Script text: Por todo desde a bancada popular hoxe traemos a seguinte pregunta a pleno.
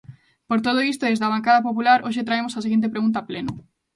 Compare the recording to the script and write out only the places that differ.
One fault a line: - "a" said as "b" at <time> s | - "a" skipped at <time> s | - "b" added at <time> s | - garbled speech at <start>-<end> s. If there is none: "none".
- "isto" added at 0.9 s